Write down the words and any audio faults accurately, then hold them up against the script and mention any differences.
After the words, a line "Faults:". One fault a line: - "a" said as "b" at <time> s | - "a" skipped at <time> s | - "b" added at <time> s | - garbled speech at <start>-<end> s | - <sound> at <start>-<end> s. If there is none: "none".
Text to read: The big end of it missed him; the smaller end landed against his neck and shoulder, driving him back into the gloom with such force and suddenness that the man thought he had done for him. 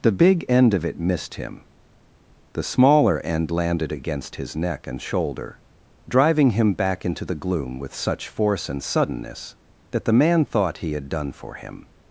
The big end of it missed him; the smaller end landed against his neck and shoulder, driving him back into the gloom with such force and suddenness that the man thought he had done for him.
Faults:
none